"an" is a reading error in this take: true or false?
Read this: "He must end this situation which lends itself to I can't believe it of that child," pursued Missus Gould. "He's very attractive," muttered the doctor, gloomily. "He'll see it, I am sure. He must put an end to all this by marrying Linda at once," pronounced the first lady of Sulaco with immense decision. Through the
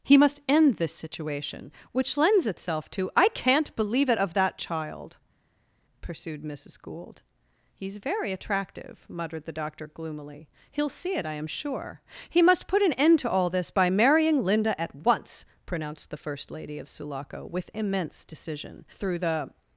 false